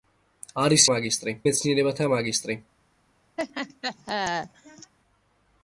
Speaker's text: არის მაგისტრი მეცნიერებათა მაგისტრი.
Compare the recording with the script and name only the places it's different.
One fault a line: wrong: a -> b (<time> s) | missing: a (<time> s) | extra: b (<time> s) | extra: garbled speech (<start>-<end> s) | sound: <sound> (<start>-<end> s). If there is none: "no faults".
sound: laugh (3.4-4.9 s)